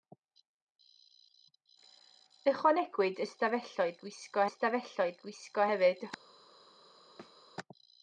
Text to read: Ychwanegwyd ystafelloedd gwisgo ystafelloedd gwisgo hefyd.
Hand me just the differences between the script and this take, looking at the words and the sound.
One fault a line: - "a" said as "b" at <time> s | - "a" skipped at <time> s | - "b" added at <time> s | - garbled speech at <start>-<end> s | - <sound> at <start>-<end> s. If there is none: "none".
- thud at 7.2-7.4 s